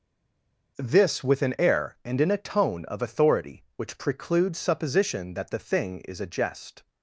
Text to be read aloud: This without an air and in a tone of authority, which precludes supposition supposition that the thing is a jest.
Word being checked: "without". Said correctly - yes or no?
no